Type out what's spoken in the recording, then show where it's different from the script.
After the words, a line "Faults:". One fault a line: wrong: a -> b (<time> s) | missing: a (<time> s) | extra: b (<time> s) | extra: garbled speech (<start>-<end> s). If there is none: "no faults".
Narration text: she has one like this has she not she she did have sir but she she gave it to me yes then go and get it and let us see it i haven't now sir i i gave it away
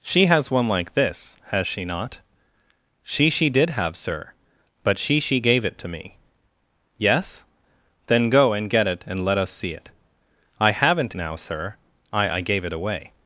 she has one like this has she not she she did have sir but she she gave it to me yes then go and get it and let us see it i haven't now sir i i gave it away
Faults:
no faults